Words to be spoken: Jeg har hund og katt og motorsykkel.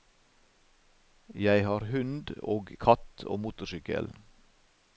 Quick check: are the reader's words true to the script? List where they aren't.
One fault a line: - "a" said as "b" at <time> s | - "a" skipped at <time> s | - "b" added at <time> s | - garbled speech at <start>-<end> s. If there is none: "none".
none